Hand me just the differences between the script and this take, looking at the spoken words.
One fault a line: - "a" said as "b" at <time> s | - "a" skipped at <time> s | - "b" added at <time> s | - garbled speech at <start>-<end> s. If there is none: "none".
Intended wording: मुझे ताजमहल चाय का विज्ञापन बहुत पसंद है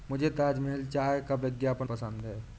- "बहुत" skipped at 1.9 s